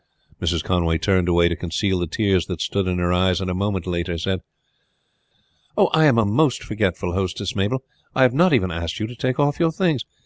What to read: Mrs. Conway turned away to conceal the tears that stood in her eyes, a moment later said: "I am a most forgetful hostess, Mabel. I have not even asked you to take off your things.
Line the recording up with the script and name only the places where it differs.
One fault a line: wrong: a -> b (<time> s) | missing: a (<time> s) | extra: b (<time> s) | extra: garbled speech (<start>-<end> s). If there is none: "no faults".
extra: and (3.4 s)